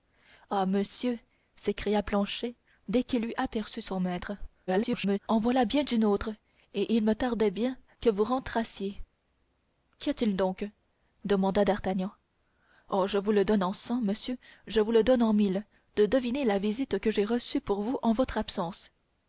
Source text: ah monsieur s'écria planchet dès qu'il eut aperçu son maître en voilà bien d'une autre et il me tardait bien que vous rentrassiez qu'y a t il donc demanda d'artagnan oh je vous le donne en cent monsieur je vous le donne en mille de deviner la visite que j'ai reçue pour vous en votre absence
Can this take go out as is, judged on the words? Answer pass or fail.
fail